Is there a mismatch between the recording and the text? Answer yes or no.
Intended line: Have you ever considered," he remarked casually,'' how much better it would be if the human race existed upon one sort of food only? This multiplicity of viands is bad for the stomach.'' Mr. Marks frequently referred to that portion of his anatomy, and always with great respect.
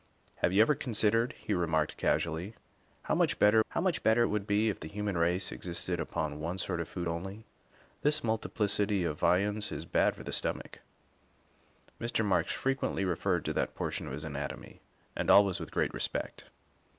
yes